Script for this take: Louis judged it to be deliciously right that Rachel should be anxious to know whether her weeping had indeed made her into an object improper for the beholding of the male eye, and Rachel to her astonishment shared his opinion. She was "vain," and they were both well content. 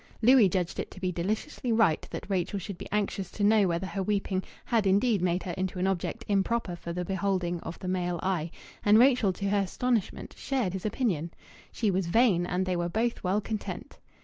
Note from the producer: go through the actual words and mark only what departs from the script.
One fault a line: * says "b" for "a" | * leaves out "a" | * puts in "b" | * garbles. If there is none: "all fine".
all fine